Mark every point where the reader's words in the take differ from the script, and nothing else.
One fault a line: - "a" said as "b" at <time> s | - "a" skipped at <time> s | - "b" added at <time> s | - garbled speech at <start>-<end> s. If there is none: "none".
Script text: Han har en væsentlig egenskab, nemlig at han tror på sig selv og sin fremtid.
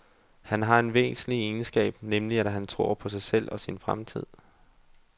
none